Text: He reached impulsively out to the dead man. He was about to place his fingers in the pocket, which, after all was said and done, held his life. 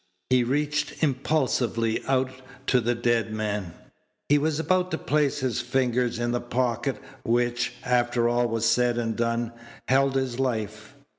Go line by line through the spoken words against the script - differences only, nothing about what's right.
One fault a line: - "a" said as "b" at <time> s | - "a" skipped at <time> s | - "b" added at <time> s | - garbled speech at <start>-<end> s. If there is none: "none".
none